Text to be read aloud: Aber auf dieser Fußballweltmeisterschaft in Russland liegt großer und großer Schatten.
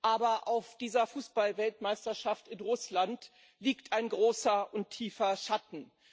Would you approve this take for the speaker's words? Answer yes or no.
no